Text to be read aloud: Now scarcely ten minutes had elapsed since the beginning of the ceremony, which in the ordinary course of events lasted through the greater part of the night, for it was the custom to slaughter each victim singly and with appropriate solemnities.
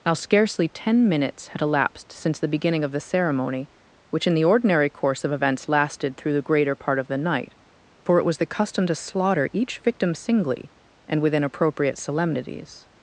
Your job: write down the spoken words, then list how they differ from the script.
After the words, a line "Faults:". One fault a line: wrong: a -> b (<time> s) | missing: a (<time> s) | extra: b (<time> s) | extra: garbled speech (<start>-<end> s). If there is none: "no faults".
Now scarcely ten minutes had elapsed since the beginning of the ceremony, which in the ordinary course of events lasted through the greater part of the night, for it was the custom to slaughter each victim singly and within appropriate solemnities.
Faults:
wrong: with -> within (11.2 s)